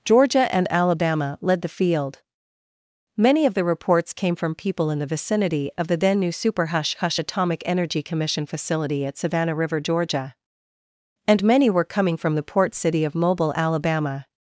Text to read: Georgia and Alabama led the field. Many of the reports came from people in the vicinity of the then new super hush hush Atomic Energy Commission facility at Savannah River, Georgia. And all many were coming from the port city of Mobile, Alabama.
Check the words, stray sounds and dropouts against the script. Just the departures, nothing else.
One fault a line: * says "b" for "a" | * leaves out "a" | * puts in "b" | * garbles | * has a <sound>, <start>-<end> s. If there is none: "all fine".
* leaves out "all"